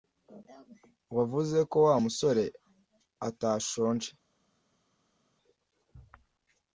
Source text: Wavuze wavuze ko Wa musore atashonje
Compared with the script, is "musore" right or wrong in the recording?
right